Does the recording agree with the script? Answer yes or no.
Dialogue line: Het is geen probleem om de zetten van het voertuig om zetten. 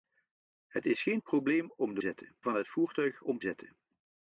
yes